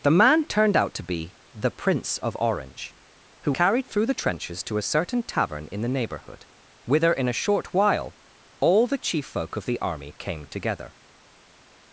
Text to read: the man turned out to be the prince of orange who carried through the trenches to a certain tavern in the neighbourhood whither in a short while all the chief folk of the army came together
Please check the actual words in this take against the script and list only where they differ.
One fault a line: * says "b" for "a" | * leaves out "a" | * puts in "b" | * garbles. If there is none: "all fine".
all fine